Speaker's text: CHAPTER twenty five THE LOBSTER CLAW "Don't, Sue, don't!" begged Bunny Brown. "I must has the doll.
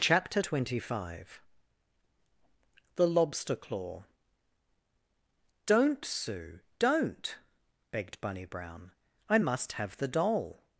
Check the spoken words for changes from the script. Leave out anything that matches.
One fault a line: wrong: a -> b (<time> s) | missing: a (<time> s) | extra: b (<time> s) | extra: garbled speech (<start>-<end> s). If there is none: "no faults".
wrong: has -> have (9.8 s)